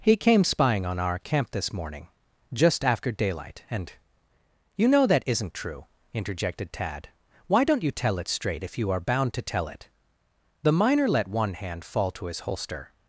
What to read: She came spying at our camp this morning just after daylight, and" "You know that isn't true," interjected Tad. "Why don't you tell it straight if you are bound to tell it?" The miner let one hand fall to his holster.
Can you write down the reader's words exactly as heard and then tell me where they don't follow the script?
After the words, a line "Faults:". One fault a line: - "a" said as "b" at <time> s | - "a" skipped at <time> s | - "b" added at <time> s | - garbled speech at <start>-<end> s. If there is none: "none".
He came spying on our camp this morning just after daylight, and" "You know that isn't true," interjected Tad. "Why don't you tell it straight if you are bound to tell it?" The miner let one hand fall to his holster.
Faults:
- "She" said as "He" at 0.0 s
- "at" said as "on" at 0.8 s